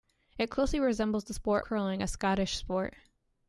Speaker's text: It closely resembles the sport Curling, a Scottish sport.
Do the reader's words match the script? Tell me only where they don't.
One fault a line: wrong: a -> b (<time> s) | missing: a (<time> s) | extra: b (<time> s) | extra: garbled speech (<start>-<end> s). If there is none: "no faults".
no faults